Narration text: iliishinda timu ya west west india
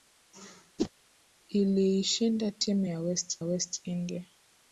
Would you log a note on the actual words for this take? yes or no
no